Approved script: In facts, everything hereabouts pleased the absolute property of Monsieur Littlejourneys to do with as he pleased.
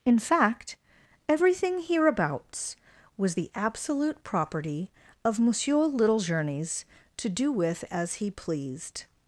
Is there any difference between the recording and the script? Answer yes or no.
yes